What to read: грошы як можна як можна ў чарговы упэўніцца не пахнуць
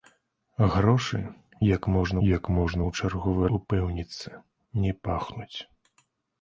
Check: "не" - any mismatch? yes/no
no